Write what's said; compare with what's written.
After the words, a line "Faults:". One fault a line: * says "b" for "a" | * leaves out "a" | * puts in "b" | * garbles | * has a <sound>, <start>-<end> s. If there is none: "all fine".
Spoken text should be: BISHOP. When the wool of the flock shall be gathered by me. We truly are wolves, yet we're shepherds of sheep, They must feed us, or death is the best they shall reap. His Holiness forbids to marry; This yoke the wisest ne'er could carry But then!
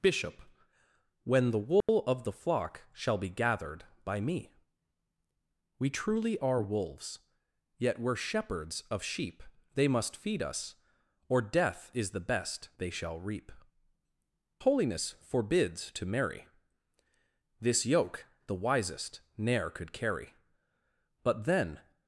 BISHOP. When the wool of the flock shall be gathered by me. We truly are wolves, yet we're shepherds of sheep, They must feed us, or death is the best they shall reap. Holiness forbids to marry; This yoke the wisest ne'er could carry But then!
Faults:
* has a dropout, 1.8-1.9 s
* leaves out "His"